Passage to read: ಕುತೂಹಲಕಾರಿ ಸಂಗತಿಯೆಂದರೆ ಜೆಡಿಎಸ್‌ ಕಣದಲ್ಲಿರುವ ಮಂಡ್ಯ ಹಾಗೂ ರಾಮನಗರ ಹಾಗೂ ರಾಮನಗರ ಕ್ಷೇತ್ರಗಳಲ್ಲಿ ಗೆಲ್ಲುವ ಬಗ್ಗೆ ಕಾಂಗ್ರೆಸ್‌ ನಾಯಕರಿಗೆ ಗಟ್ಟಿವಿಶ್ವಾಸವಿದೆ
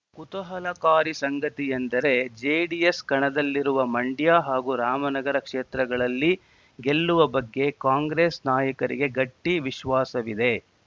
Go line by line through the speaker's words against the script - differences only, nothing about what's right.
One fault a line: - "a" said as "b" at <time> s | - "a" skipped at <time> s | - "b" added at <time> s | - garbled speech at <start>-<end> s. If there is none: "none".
- "ಹಾಗೂ ರಾಮನಗರ" skipped at 5.4 s